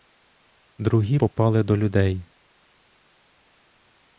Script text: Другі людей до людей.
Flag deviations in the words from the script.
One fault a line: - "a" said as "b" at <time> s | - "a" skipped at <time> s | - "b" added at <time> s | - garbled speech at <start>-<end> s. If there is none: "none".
- "людей" said as "попали" at 1.1 s